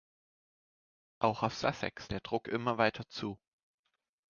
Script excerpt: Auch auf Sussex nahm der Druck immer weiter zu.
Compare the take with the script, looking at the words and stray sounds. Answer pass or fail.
fail